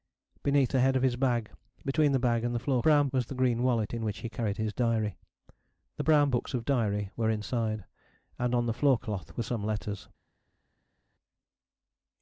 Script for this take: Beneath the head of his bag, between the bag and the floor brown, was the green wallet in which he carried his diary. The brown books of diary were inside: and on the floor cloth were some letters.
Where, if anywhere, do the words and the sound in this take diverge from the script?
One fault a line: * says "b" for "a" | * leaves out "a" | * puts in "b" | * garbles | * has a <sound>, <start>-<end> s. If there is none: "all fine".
all fine